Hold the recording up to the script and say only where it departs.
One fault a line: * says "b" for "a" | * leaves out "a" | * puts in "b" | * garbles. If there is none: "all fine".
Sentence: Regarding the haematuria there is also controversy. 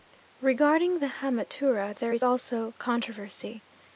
all fine